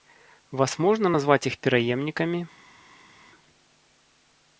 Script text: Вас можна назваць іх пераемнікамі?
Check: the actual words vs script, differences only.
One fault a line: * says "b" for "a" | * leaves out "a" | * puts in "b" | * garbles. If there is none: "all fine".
all fine